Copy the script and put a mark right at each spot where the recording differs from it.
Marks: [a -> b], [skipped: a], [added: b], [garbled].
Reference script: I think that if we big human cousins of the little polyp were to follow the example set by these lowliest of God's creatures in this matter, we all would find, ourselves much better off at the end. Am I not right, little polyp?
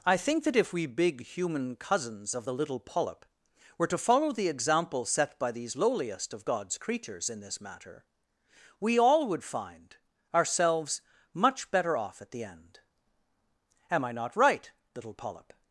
I think that if we big human cousins of the little polyp were to follow the example set by these lowliest of God's creatures in this matter, we all would find, ourselves much better off at the end. Am I not right, little polyp?